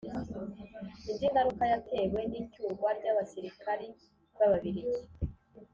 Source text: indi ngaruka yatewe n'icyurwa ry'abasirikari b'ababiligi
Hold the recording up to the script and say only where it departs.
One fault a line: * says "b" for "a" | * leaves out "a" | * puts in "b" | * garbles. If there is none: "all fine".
all fine